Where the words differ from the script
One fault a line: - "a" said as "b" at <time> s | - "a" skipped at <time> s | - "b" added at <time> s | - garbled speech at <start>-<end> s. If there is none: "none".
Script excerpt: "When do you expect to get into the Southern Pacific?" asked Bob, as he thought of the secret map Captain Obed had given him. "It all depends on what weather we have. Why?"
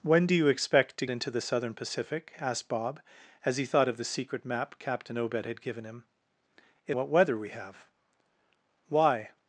- "get" skipped at 1.1 s
- "all depends on" skipped at 7.0 s